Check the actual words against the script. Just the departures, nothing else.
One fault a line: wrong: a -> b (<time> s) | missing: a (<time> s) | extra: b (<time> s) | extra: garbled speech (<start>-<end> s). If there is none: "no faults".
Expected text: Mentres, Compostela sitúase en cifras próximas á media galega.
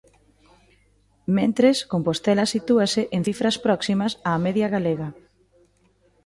no faults